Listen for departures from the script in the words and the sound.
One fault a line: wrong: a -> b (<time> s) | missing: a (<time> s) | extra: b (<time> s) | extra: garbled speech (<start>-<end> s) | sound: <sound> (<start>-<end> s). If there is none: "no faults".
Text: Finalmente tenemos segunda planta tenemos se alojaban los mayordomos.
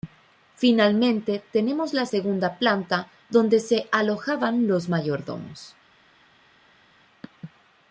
extra: la (1.9 s)
wrong: tenemos -> donde (3.3 s)